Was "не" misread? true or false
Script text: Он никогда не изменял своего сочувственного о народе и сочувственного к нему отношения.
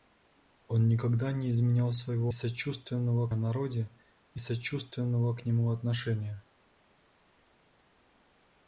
false